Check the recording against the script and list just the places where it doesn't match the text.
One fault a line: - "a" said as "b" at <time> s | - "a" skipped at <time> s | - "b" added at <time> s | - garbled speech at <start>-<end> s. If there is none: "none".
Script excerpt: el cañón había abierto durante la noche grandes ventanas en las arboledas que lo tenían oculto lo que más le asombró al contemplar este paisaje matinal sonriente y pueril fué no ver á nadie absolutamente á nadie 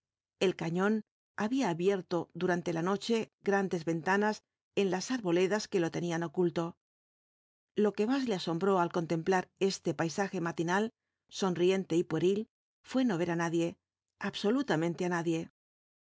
none